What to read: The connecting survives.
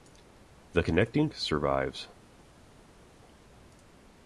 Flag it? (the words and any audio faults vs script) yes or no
no